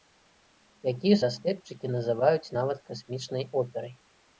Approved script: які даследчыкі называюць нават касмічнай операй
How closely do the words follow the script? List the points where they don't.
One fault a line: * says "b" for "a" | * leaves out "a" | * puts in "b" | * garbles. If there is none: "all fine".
all fine